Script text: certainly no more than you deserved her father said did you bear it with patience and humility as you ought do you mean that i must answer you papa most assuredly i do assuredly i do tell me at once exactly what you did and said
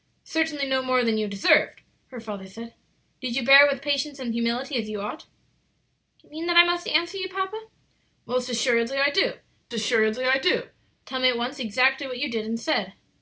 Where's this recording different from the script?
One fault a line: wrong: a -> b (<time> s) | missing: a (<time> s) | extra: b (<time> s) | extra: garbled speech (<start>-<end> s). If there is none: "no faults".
no faults